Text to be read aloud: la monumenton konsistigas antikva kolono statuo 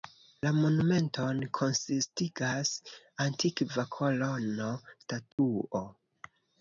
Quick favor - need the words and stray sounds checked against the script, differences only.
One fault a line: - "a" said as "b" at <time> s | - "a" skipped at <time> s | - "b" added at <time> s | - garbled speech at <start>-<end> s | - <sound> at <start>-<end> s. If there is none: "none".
- dropout at 5.3-5.4 s